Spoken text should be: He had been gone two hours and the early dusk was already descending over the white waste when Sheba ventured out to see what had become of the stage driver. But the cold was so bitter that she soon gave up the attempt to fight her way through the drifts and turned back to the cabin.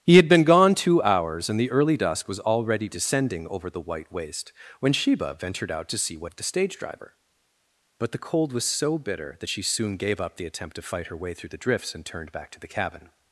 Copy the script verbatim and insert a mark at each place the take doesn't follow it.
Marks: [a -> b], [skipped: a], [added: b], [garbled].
He had been gone two hours and the early dusk was already descending over the white waste when Sheba ventured out to see what [skipped: had become] of the stage driver. But the cold was so bitter that she soon gave up the attempt to fight her way through the drifts and turned back to the cabin.